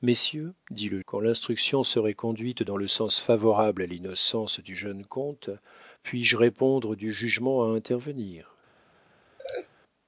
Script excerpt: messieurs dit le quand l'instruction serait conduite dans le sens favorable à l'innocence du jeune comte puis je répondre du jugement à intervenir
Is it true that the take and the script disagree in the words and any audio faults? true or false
true